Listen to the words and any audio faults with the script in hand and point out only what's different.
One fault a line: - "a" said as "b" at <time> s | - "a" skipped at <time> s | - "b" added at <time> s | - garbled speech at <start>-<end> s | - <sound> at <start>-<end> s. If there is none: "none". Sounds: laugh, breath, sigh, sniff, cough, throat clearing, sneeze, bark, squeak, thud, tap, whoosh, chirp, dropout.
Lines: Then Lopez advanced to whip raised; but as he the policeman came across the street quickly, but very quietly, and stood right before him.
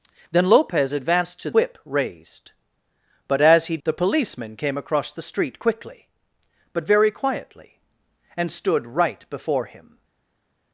none